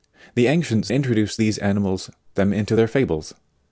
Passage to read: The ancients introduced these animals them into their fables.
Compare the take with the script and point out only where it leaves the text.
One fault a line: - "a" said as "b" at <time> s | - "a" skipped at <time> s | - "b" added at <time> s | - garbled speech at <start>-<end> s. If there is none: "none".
none